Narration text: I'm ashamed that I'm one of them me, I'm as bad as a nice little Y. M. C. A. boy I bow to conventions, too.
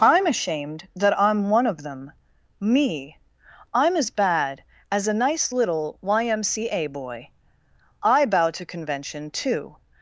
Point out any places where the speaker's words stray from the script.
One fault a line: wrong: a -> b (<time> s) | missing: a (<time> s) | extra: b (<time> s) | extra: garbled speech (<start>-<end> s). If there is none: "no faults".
wrong: conventions -> convention (8.6 s)